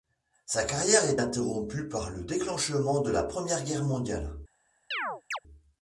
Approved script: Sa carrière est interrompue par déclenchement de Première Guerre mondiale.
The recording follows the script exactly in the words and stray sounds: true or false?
false